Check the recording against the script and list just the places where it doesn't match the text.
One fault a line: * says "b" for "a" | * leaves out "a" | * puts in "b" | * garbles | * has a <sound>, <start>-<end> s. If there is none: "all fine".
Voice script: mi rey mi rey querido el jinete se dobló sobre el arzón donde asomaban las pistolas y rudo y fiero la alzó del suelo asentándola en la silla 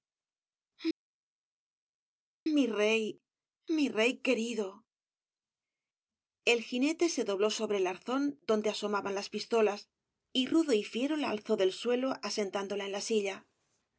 all fine